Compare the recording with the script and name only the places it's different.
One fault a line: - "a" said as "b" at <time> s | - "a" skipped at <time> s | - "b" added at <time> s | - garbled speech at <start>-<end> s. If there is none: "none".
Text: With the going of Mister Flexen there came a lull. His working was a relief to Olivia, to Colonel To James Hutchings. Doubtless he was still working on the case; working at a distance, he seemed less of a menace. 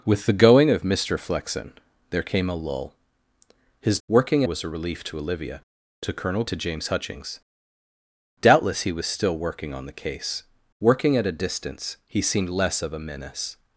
none